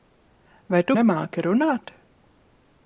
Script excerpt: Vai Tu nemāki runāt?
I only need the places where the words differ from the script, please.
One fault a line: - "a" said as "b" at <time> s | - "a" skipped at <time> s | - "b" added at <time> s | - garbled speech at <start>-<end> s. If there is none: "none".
none